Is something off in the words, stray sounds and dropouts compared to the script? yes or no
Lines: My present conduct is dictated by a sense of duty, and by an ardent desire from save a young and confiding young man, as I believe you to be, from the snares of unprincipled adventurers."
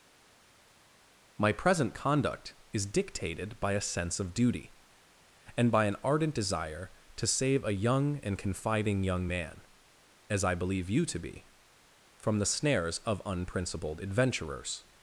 yes